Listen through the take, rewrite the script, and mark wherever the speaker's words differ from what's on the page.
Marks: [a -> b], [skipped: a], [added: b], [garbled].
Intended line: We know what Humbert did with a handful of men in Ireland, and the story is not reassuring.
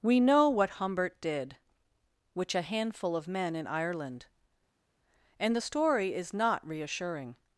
We know what Humbert did [with -> which] a handful of men in Ireland, and the story is not reassuring.